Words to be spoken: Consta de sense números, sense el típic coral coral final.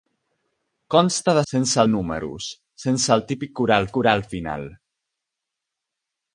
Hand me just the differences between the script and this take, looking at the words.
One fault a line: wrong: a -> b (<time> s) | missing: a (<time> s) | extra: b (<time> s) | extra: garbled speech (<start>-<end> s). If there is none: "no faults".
no faults